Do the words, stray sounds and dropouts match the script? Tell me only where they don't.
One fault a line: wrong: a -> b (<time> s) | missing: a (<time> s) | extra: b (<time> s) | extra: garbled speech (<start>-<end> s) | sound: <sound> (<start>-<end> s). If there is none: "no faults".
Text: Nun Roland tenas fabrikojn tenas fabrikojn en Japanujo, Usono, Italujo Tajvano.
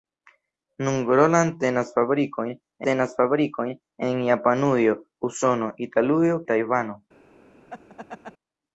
sound: laugh (7.7-8.3 s)